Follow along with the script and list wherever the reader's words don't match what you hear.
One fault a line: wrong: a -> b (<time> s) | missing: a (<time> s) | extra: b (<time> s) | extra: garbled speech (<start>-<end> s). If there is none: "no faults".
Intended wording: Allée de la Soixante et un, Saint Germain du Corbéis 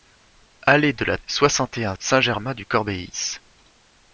no faults